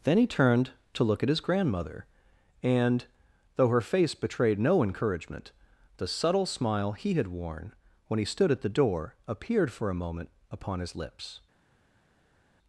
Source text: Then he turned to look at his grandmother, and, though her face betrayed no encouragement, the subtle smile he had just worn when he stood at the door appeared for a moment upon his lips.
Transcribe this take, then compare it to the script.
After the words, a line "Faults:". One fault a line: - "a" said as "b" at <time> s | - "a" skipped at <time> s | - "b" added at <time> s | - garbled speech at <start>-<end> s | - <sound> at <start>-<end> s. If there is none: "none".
Then he turned to look at his grandmother, and, though her face betrayed no encouragement, the subtle smile he had worn when he stood at the door appeared for a moment upon his lips.
Faults:
- "just" skipped at 7.3 s